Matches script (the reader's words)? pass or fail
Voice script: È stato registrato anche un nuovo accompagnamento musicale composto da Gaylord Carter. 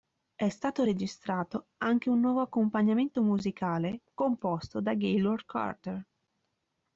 pass